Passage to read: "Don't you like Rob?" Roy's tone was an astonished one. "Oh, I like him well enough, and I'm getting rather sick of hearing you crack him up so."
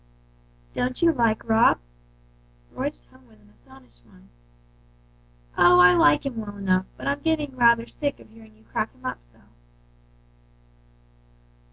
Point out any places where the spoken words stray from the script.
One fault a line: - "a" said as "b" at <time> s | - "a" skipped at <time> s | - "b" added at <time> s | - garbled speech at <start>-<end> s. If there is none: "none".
- "and" said as "but" at 6.9 s